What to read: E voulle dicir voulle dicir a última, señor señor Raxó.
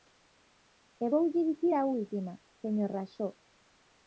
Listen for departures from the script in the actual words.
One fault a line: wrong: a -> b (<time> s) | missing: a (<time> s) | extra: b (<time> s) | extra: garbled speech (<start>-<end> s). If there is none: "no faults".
missing: voulle dicir (1.7 s)
missing: señor (2.9 s)